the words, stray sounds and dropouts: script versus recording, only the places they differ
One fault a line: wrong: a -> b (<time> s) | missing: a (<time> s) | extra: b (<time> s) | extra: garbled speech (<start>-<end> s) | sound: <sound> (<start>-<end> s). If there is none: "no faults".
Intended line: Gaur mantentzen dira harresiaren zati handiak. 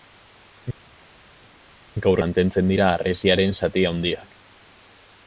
no faults